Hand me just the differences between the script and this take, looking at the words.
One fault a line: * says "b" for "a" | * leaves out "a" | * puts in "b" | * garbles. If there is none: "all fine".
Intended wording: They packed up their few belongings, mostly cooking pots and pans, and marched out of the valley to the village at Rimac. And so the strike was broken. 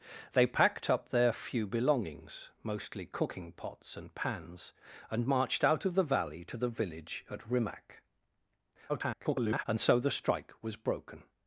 * garbles